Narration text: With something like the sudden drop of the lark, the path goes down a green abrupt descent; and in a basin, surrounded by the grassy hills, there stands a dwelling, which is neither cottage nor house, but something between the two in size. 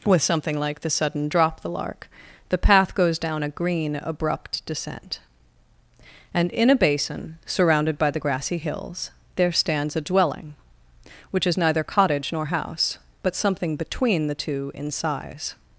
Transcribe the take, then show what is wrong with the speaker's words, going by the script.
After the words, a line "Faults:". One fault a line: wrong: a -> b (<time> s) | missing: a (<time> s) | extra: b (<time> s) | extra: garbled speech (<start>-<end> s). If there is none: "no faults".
With something like the sudden drop the lark, the path goes down a green abrupt descent; and in a basin, surrounded by the grassy hills, there stands a dwelling, which is neither cottage nor house, but something between the two in size.
Faults:
missing: of (1.6 s)